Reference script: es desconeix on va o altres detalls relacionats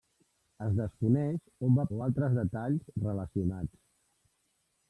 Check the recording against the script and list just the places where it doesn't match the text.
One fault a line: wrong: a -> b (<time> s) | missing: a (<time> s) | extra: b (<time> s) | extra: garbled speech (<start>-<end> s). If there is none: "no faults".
no faults